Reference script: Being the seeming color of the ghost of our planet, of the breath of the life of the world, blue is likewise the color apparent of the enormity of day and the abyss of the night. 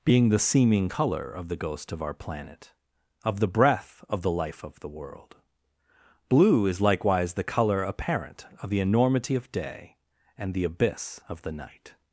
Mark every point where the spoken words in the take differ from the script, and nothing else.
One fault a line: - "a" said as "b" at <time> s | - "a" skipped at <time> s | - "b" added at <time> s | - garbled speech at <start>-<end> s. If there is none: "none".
none